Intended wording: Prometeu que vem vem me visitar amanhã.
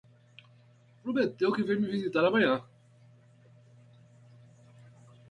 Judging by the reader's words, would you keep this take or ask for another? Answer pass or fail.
fail